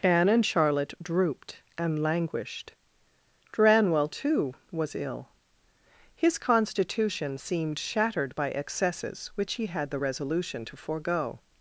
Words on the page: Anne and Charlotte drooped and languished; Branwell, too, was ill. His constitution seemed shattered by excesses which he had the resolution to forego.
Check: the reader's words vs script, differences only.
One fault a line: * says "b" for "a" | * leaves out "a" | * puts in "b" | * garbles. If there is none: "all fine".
all fine